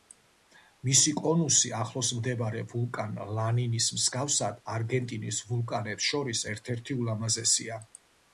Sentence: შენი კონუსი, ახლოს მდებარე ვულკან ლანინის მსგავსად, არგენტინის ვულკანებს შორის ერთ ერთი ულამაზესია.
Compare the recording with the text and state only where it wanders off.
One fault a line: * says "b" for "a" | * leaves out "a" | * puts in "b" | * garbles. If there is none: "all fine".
* says "მისი" for "შენი"